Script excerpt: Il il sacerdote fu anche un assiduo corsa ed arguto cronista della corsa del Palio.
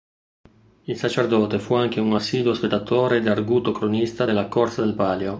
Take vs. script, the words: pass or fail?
fail